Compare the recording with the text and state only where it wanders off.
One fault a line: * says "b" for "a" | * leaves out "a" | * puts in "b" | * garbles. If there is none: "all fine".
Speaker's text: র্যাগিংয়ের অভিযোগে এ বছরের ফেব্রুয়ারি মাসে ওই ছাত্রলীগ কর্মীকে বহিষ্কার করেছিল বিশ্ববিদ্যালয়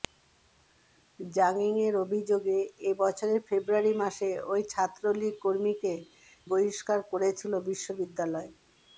all fine